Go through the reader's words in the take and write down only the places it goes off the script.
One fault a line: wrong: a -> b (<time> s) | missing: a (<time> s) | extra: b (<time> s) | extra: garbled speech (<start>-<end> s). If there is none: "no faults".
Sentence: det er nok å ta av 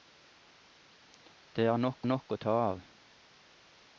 extra: nok (2.0 s)